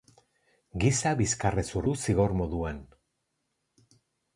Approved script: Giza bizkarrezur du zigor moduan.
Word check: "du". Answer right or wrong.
right